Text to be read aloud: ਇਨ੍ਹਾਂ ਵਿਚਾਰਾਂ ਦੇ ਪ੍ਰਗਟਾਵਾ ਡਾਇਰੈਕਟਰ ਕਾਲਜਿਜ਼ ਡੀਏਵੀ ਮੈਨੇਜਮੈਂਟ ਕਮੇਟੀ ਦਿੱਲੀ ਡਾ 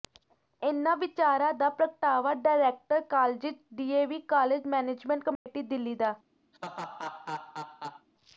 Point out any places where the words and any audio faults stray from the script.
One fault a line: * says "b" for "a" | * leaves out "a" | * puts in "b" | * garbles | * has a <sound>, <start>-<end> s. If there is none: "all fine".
* says "ਦਾ" for "ਦੇ"
* puts in "ਕਾਲਜ"
* has a dropout, 5.4-5.5 s
* has a laugh, 6.5-8.1 s